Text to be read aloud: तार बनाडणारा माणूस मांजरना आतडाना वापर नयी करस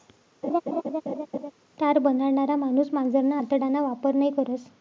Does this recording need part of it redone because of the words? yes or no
no